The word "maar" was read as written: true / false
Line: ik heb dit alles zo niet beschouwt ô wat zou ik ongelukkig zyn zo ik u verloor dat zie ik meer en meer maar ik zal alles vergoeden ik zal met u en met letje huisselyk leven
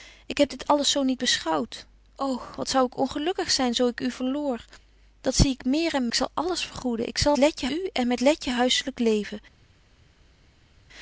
false